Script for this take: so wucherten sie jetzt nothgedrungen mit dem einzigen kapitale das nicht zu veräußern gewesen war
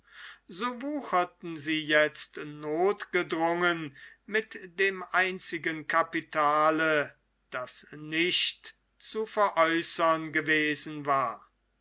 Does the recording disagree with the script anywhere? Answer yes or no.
no